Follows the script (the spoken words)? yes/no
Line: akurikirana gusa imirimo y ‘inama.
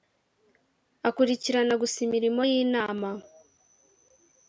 yes